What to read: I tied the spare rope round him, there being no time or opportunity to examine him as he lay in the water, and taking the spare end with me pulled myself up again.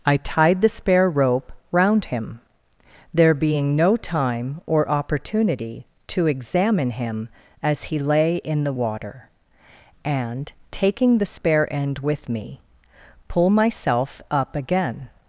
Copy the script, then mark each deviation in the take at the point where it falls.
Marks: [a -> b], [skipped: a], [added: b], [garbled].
I tied the spare rope round him, there being no time or opportunity to examine him as he lay in the water, and taking the spare end with me [pulled -> pull] myself up again.